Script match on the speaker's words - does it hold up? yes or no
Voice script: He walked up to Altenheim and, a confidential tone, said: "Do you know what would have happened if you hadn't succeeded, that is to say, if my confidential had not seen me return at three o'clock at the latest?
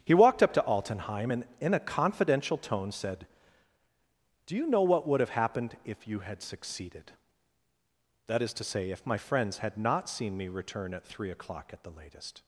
no